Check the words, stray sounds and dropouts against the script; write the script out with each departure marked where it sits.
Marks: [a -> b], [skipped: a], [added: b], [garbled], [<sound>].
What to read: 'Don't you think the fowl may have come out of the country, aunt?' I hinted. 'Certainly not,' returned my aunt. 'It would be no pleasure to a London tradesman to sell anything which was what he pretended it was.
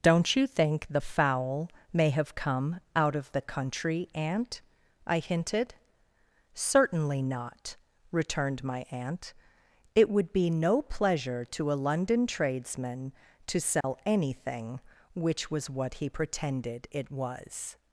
'Don't you think the fowl may have come out of the country, aunt?' I hinted. 'Certainly not,' returned my aunt. 'It would be no pleasure to a London tradesman to sell [dropout] anything which was what he pretended it was.